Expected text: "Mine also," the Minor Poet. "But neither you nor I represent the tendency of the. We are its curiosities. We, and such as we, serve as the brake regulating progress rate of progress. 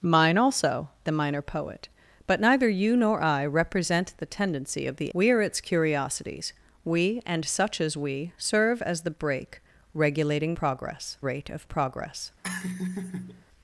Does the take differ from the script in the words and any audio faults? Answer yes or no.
yes